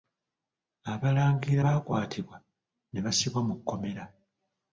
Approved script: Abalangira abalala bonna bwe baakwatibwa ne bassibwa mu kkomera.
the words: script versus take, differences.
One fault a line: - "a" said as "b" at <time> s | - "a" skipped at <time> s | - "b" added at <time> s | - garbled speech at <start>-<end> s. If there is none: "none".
- "abalala bonna bwe" skipped at 1.6 s